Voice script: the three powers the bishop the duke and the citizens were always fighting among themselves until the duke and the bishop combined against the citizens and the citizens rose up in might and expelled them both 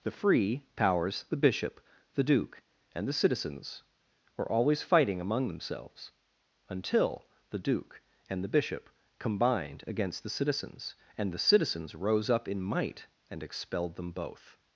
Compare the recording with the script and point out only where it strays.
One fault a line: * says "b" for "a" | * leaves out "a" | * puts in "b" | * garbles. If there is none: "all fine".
* says "free" for "three"